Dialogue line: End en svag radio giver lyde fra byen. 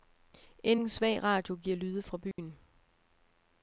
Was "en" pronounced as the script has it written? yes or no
yes